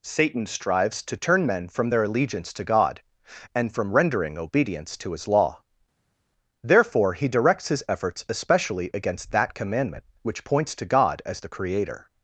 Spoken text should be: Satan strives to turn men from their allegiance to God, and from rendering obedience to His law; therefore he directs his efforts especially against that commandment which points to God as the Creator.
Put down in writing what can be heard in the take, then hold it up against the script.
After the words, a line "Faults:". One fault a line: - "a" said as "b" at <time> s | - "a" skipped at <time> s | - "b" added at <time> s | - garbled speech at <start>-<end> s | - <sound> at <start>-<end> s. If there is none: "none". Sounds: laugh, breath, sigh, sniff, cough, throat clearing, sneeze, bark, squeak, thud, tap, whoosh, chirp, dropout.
Satan strives to turn men from their allegiance to God, and from rendering obedience to His law; therefore he directs his efforts especially against that commandment which points to God as the Creator.
Faults:
none